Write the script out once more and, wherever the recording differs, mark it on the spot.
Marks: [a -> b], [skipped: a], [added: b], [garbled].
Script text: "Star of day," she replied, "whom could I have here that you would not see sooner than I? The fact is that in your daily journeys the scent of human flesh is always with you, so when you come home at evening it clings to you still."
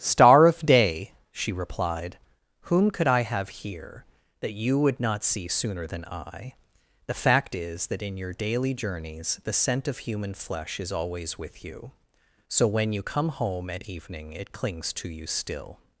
"Star of day," she replied, "whom could I have here that you would not see sooner than I? The fact is that in your daily journeys the scent of human flesh is always with you, so when you come home at evening it clings to you still."